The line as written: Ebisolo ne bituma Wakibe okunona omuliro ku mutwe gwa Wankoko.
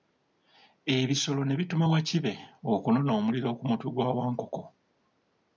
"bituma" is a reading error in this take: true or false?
false